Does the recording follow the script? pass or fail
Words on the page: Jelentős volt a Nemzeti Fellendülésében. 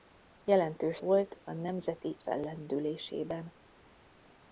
pass